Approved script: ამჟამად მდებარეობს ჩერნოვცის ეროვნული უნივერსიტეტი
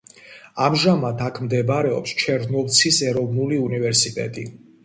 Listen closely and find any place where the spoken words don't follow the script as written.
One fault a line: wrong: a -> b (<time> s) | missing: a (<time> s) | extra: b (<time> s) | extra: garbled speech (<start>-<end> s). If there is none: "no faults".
extra: აქ (1.2 s)